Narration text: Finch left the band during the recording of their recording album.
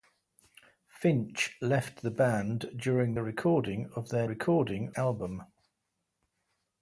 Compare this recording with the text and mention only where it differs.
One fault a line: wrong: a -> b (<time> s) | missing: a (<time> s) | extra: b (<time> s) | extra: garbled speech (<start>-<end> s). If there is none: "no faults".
no faults